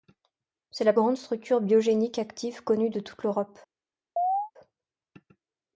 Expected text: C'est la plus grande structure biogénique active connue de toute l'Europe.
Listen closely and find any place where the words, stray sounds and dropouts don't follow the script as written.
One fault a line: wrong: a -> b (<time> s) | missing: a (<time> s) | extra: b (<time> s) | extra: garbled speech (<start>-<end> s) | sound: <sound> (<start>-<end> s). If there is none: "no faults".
missing: plus (0.9 s)
sound: chirp (4.2-4.5 s)